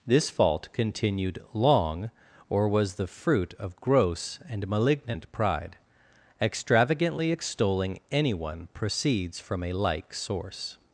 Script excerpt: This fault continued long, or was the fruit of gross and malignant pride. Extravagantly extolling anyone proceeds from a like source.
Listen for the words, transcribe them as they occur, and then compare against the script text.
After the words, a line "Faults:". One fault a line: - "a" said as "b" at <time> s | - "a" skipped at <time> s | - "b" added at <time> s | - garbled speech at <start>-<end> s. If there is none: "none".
This fault continued long, or was the fruit of gross and malignant pride. Extravagantly extolling anyone proceeds from a like source.
Faults:
none